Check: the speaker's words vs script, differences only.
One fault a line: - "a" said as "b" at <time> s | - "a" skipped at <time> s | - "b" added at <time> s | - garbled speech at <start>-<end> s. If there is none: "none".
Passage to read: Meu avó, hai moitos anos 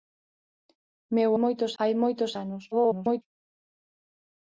- "avó" said as "moitos" at 1.4 s
- garbled speech at 2.7-3.2 s